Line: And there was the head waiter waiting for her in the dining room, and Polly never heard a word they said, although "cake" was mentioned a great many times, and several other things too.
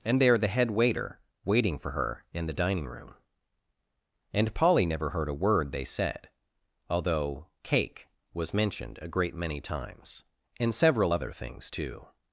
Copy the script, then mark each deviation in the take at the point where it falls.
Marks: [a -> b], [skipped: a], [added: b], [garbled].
And there [skipped: was] the head waiter waiting for her in the dining room, and Polly never heard a word they said, although "cake" was mentioned a great many times, and several other things too.